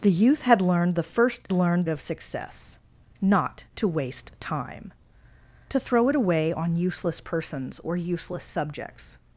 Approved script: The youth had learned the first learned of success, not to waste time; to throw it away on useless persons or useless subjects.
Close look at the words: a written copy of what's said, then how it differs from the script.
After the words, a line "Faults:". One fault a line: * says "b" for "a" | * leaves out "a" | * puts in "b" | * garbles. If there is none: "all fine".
The youth had learned the first learned of success, not to waste time; to throw it away on useless persons or useless subjects.
Faults:
all fine